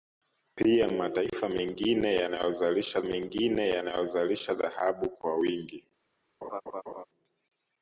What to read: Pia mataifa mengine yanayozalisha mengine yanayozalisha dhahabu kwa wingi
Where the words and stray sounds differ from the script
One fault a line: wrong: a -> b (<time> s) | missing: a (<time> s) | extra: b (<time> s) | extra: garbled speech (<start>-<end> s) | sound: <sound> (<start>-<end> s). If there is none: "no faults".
sound: laugh (6.4-7.0 s)